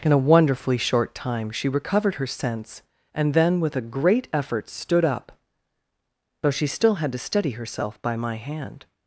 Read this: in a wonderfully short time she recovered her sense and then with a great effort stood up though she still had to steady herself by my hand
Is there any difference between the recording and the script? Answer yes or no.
no